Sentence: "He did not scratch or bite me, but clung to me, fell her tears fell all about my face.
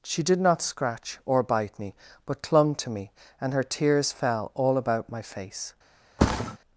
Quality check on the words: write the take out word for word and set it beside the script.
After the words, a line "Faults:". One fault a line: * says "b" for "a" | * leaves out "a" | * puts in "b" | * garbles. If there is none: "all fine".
"She did not scratch or bite me, but clung to me, and her tears fell all about my face.
Faults:
* says "She" for "He"
* says "and" for "fell"